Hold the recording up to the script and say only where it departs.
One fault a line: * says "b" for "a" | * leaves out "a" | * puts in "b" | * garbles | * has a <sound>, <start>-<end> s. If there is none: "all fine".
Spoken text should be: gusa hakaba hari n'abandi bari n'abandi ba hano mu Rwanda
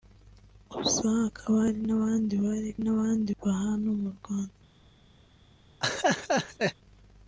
* has a laugh, 5.8-6.7 s